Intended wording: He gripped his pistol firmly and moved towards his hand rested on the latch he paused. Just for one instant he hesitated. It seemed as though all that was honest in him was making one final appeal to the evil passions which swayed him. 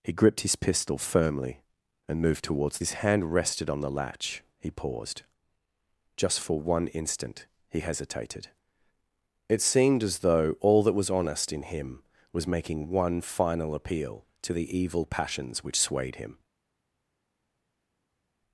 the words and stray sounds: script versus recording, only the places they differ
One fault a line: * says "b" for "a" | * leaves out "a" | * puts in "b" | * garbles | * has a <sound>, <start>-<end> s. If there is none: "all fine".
all fine